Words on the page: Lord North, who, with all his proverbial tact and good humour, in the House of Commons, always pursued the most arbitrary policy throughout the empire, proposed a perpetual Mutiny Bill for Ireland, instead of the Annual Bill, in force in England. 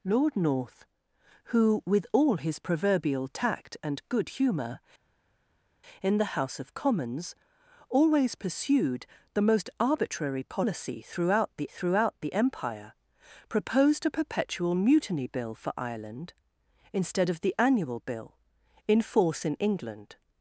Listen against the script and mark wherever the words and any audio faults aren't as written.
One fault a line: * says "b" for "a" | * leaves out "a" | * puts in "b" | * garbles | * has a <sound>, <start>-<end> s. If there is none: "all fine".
* puts in "throughout the"